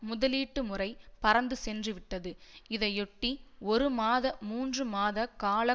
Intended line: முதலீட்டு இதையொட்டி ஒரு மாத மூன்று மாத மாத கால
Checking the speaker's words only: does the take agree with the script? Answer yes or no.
no